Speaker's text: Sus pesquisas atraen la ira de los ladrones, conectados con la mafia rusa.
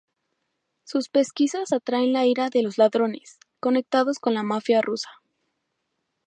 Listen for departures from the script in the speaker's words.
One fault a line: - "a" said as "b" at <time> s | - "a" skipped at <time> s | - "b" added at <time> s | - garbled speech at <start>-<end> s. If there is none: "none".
none